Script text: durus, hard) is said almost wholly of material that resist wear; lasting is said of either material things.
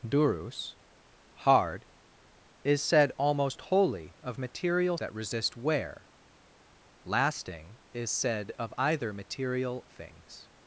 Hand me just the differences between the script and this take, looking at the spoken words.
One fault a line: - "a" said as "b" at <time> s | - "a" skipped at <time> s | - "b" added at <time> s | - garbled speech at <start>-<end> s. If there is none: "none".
none